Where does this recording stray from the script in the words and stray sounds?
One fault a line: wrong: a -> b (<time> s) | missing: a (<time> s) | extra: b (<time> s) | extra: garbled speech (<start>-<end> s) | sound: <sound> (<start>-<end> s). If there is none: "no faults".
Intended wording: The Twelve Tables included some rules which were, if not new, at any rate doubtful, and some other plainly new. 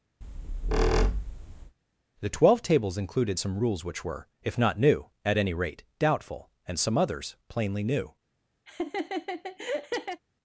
sound: squeak (0.2-1.7 s)
wrong: other -> others (7.0 s)
sound: laugh (8.7-10.2 s)